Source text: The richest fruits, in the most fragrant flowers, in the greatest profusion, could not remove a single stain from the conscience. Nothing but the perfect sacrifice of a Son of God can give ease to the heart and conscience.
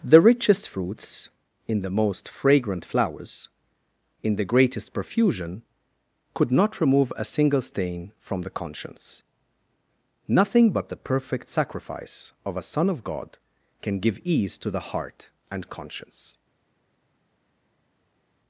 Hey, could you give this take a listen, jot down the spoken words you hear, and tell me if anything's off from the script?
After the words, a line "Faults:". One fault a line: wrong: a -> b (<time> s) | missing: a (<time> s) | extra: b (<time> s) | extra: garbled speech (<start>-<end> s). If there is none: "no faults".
The richest fruits, in the most fragrant flowers, in the greatest profusion, could not remove a single stain from the conscience. Nothing but the perfect sacrifice of a Son of God can give ease to the heart and conscience.
Faults:
no faults